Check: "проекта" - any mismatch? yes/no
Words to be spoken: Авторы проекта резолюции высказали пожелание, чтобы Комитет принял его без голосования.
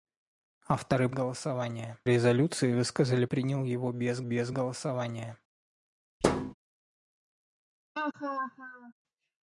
yes